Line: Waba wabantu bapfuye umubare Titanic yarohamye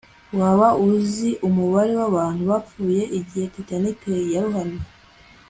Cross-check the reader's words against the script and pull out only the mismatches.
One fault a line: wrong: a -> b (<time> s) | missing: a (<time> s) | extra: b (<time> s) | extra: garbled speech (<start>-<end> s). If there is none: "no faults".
extra: uzi umubare (0.9 s)
wrong: umubare -> igihe (3.2 s)